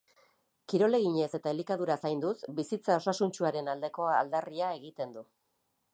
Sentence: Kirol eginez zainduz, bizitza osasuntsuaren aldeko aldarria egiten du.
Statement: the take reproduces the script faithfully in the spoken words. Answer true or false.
false